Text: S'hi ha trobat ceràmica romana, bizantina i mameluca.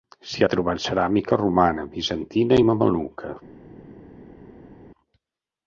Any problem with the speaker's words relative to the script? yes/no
no